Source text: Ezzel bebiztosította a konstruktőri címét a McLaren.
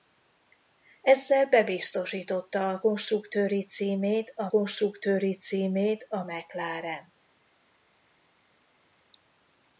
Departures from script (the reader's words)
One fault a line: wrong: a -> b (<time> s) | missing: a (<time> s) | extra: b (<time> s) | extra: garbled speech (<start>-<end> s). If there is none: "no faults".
extra: konstruktőri címét a (4.5 s)